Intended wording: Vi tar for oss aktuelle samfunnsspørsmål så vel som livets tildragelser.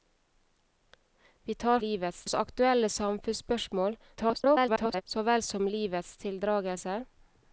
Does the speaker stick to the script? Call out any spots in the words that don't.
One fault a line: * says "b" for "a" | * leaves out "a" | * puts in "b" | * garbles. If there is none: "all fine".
* says "livets" for "for"
* garbles